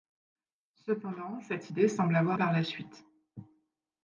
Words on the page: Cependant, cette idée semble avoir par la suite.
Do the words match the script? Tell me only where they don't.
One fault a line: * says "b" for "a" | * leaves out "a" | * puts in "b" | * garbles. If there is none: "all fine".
all fine